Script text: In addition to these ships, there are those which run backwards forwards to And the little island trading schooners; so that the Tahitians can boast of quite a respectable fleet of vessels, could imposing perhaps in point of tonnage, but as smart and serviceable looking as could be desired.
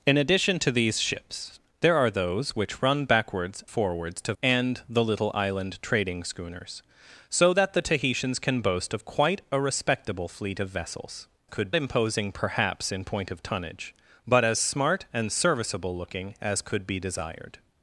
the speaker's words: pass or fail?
pass